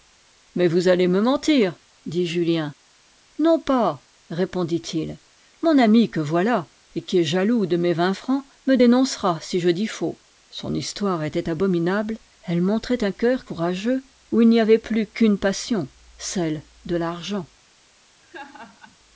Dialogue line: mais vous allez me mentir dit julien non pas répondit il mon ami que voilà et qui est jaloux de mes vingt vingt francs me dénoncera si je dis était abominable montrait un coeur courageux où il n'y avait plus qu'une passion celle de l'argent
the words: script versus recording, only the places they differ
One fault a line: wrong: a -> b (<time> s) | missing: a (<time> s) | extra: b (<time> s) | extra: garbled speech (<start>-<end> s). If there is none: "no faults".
missing: vingt (8.2 s)
extra: faux son histoire (9.9 s)
extra: elle (12.4 s)